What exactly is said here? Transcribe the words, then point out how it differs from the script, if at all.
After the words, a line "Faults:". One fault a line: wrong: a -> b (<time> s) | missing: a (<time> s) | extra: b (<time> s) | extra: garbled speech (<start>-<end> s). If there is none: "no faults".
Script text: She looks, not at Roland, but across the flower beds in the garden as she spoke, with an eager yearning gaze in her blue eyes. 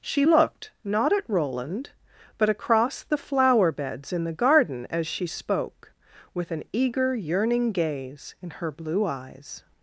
She looked, not at Roland, but across the flower beds in the garden as she spoke, with an eager yearning gaze in her blue eyes.
Faults:
wrong: looks -> looked (0.2 s)